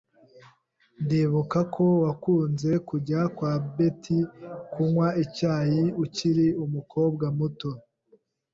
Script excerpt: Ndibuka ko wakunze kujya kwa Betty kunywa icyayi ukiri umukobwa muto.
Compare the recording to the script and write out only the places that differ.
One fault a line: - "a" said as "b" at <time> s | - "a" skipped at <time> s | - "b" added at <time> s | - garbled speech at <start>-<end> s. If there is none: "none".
none